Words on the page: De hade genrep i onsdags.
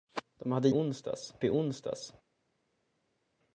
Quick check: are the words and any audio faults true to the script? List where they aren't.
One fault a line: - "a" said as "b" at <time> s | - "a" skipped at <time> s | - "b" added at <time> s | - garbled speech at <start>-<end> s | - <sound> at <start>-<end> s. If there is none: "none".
- "genrep" said as "onsdags" at 0.7 s